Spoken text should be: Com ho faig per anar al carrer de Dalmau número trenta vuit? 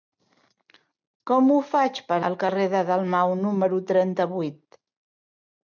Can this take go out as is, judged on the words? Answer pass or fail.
fail